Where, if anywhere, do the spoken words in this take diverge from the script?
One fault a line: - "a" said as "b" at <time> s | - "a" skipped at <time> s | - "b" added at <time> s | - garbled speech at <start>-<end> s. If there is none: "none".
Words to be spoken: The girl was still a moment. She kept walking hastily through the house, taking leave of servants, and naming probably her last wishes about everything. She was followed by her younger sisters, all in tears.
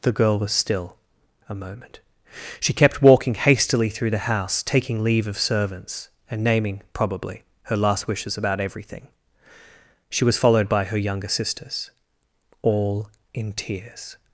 none